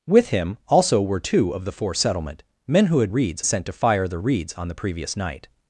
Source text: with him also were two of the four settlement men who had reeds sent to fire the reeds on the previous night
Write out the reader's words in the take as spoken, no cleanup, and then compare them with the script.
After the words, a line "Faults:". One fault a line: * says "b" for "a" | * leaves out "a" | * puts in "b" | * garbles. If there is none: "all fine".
with him also were two of the four settlement men who had reeds sent to fire the reeds on the previous night
Faults:
all fine